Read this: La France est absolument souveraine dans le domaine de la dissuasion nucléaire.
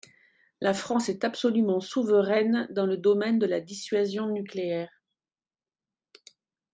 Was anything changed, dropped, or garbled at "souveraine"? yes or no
no